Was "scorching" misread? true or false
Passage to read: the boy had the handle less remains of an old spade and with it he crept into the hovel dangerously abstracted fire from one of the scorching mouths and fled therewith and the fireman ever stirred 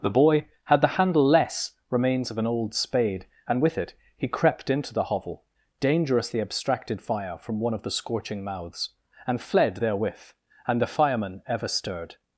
false